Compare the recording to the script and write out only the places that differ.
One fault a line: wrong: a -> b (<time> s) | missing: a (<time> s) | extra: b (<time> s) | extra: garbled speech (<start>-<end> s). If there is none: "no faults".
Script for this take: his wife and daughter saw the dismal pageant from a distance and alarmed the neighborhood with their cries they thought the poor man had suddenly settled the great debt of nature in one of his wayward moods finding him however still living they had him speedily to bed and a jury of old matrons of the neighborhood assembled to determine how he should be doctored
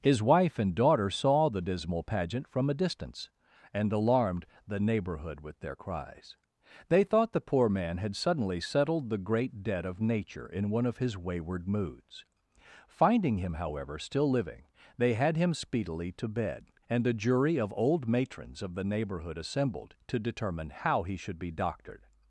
no faults